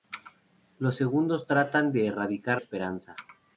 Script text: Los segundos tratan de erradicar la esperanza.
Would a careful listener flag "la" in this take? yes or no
yes